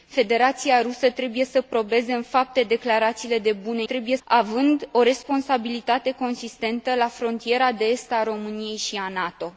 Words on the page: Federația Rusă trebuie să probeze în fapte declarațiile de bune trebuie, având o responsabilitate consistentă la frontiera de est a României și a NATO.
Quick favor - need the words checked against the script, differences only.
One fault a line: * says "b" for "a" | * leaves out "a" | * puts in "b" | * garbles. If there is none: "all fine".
all fine